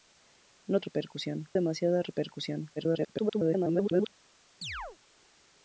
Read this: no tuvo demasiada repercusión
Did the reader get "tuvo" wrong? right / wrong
wrong